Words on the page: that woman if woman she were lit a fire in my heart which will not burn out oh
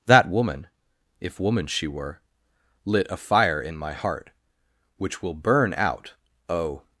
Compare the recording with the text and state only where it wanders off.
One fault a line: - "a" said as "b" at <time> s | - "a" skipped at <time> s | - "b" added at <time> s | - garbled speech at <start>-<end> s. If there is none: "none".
- "not" skipped at 5.3 s